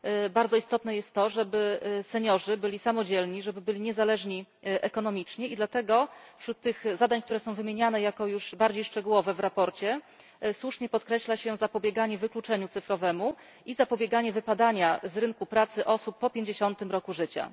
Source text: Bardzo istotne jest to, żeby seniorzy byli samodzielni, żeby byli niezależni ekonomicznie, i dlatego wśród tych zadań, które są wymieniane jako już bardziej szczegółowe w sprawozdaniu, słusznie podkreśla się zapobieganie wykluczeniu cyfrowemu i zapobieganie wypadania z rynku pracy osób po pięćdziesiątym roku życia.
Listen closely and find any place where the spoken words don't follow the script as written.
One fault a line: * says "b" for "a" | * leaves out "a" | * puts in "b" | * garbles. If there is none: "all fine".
all fine